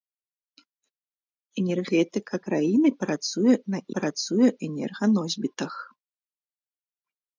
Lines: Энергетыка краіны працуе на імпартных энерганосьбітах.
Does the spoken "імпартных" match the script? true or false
false